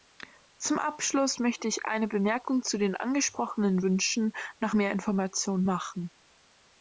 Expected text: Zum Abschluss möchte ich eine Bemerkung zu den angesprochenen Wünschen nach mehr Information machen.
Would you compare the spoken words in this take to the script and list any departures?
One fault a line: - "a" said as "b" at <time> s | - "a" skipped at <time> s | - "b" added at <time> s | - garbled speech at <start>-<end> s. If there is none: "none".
none